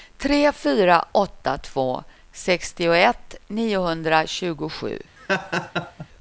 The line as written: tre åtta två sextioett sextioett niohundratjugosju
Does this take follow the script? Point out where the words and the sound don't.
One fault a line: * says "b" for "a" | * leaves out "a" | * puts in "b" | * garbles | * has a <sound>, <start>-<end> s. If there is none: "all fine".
* puts in "fyra"
* leaves out "sextioett"
* has a laugh, 5.2-6.1 s